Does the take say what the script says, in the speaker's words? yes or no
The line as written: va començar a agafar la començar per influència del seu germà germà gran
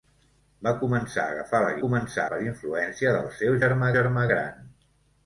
yes